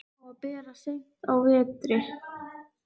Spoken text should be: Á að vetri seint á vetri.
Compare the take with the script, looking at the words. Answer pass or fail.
fail